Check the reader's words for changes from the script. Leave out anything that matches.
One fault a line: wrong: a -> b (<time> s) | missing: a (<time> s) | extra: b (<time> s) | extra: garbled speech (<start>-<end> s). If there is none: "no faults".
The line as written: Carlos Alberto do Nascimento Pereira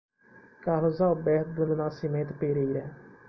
extra: do (1.6 s)